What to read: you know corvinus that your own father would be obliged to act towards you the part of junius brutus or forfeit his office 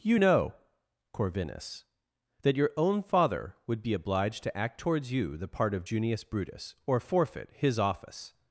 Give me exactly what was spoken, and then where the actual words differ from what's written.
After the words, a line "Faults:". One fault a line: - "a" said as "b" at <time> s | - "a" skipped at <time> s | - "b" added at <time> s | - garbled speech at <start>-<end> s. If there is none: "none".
you know corvinus that your own father would be obliged to act towards you the part of junius brutus or forfeit his office
Faults:
none